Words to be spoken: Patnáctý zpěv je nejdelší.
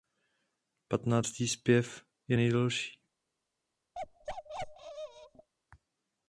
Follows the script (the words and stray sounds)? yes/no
no